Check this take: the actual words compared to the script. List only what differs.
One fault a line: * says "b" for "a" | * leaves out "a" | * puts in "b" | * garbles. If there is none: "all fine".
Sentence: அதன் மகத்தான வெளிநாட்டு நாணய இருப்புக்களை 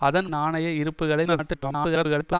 * leaves out "மகத்தான வெளிநாட்டு"
* garbles